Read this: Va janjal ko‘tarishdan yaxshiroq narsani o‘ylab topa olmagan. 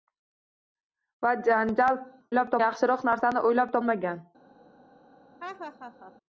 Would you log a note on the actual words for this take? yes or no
yes